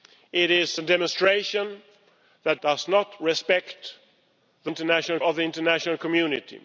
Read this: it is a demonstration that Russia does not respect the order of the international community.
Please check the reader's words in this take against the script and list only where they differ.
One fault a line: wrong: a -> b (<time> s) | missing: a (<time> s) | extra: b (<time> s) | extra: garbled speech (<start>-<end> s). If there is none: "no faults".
missing: Russia (2.6 s)
wrong: order -> international (4.7 s)